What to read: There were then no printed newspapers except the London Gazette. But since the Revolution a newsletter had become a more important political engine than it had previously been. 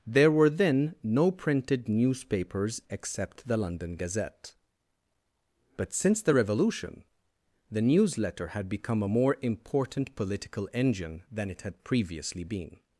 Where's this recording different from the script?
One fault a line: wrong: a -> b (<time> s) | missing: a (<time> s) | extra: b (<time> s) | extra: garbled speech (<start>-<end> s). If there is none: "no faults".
wrong: a -> the (7.7 s)